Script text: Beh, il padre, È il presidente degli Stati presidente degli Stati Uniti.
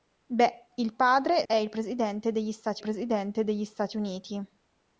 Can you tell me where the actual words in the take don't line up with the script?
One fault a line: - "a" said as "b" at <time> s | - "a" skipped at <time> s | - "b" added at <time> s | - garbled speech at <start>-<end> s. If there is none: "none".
none